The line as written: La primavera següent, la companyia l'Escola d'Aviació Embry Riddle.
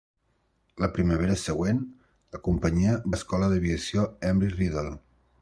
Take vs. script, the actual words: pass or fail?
pass